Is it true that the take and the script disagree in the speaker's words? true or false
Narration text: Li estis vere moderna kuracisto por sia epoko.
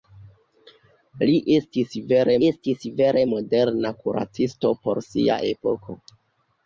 true